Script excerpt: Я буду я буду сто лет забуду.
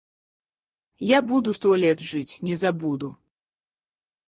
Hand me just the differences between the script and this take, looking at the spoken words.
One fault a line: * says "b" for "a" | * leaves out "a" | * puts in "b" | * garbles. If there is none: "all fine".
* says "сто лет жить не" for "я буду сто лет"